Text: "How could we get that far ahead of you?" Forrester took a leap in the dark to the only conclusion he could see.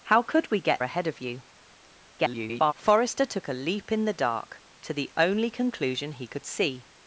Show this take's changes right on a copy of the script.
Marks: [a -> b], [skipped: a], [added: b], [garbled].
"How could we get [skipped: that far] ahead of you?" [garbled] Forrester took a leap in the dark to the only conclusion he could see.